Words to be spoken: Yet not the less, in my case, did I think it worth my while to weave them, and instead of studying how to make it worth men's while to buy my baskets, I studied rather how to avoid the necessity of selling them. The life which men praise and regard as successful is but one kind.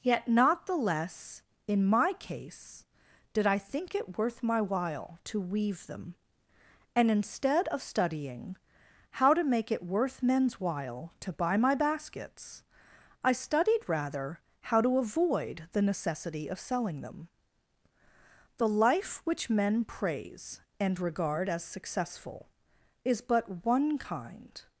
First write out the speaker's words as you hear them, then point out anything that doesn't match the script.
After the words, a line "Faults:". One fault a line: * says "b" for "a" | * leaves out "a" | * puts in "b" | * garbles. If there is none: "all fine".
Yet not the less, in my case, did I think it worth my while to weave them, and instead of studying how to make it worth men's while to buy my baskets, I studied rather how to avoid the necessity of selling them. The life which men praise and regard as successful is but one kind.
Faults:
all fine